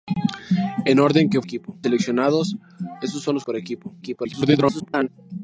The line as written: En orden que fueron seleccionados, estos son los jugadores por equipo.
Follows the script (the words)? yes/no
no